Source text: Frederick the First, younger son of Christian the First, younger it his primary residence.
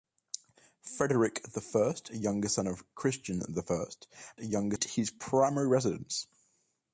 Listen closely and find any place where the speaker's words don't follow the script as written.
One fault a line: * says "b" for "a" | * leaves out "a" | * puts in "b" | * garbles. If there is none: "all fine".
all fine